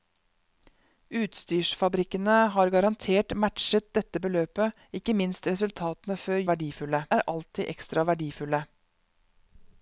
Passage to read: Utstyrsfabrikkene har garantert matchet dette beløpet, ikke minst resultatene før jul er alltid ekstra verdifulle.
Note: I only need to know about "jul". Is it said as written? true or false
false